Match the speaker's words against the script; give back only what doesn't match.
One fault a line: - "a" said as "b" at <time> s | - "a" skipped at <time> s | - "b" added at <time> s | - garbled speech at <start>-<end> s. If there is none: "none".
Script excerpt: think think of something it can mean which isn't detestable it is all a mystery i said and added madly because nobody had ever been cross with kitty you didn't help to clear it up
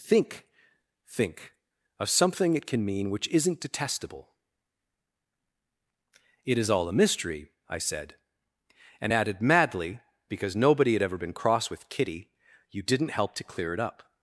none